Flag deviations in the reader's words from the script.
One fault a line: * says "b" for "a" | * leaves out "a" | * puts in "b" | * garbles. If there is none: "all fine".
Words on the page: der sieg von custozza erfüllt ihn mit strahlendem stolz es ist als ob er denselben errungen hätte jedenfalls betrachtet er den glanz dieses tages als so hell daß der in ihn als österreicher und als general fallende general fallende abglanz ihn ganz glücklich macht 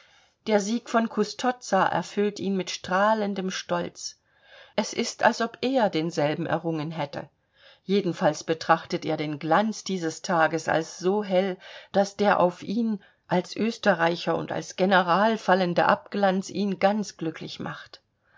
* says "auf" for "in"
* leaves out "general fallende"